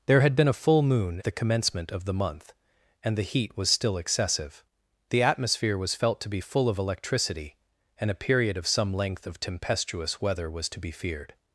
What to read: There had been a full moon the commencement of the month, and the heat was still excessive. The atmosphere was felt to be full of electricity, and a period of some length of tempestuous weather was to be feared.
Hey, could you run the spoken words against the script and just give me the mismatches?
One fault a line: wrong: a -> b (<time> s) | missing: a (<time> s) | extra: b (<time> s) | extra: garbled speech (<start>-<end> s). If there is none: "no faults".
no faults